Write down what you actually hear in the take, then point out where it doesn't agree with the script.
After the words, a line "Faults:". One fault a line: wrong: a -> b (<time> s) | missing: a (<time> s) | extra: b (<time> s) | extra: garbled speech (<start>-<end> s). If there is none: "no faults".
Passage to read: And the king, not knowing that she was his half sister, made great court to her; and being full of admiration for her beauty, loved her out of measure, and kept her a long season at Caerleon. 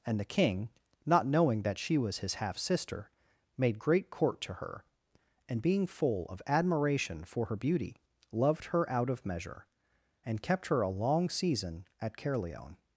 And the king, not knowing that she was his half sister, made great court to her; and being full of admiration for her beauty, loved her out of measure, and kept her a long season at Caerleon.
Faults:
no faults